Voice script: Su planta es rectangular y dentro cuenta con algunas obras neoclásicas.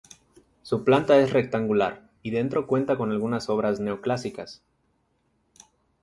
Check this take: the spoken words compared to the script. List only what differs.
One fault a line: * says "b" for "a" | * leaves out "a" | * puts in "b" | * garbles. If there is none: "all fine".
all fine